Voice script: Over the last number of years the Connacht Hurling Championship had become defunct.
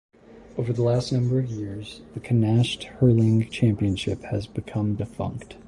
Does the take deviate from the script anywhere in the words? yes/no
yes